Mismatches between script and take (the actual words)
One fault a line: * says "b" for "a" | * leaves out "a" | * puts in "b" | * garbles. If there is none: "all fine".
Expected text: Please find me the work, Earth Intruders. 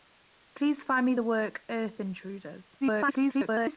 * garbles